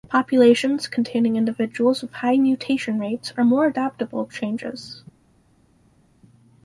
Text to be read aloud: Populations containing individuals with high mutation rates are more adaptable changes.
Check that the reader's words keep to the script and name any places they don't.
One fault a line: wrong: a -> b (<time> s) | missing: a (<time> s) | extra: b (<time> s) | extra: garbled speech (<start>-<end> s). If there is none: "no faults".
no faults